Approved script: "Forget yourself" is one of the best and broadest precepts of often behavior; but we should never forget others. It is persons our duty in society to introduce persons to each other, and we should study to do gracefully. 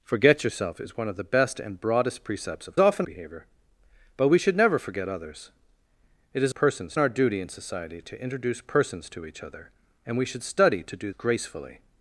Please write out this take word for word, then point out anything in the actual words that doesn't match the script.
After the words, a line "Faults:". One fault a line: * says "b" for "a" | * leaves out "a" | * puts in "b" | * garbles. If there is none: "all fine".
"Forget yourself" is one of the best and broadest precepts of often behavior; but we should never forget others. It is persons our duty in society to introduce persons to each other, and we should study to do gracefully.
Faults:
all fine